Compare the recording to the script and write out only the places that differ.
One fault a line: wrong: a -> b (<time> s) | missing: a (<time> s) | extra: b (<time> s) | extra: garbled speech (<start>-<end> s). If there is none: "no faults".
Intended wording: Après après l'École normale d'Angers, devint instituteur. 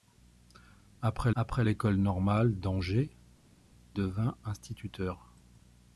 no faults